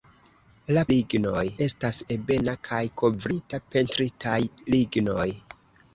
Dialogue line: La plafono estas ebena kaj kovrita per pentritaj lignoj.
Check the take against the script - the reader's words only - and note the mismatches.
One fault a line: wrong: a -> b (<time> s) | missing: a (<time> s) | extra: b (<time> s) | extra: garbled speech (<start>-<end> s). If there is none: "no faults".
wrong: plafono -> lignoj (1.0 s)
missing: per (3.6 s)